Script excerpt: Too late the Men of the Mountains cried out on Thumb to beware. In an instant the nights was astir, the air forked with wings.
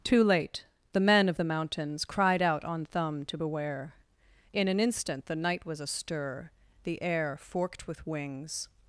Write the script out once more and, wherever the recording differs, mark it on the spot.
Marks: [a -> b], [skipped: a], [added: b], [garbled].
Too late the Men of the Mountains cried out on Thumb to beware. In an instant the [nights -> night] was astir, the air forked with wings.